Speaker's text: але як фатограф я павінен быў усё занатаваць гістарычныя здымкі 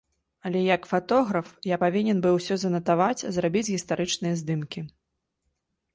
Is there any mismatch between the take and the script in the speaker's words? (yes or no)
yes